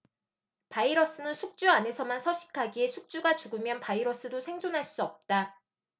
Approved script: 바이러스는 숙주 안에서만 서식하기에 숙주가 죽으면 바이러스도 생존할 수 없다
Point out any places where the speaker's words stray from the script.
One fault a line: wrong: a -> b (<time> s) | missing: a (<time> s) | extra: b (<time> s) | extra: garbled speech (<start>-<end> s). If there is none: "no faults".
no faults